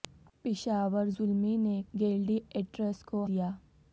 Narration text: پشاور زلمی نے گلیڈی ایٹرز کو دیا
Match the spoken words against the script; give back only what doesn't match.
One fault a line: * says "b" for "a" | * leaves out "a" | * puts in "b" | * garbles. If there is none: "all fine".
all fine